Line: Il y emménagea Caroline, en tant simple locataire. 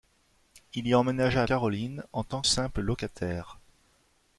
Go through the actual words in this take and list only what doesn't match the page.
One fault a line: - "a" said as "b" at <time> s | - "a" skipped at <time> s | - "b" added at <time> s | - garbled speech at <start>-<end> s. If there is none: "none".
none